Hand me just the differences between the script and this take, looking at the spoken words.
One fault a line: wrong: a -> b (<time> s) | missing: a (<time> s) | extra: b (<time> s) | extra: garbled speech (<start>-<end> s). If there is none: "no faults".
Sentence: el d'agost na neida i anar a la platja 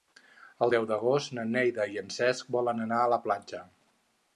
extra: deu (0.7 s)
extra: en cesc volen (2.0 s)